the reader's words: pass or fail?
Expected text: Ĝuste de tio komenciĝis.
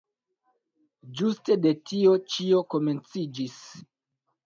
fail